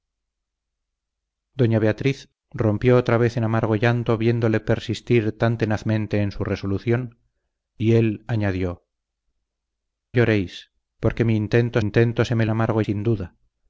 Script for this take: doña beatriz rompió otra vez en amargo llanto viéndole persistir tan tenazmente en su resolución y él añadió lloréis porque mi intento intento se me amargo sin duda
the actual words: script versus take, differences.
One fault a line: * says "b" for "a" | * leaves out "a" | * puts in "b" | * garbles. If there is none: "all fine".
all fine